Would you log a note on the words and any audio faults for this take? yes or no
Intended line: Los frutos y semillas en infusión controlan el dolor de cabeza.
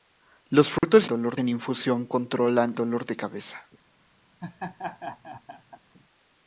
yes